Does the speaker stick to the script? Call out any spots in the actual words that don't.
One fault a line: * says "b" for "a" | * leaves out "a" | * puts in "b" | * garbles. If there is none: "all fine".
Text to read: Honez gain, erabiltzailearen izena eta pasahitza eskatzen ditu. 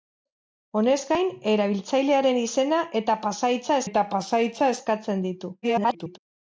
* puts in "eta pasahitza"
* garbles